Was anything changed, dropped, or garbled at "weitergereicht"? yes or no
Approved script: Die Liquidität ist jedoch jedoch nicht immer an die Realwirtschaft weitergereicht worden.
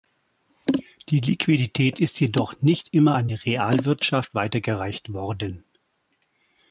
no